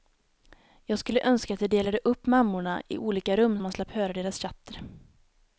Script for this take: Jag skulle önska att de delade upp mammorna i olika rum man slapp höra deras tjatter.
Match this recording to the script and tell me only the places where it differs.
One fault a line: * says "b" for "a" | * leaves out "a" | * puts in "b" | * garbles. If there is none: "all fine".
all fine